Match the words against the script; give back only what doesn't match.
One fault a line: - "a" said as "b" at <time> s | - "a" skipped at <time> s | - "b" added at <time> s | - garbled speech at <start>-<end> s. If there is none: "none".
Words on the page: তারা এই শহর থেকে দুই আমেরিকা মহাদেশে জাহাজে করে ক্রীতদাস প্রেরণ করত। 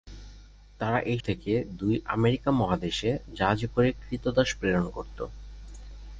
- "শহর" skipped at 1.2 s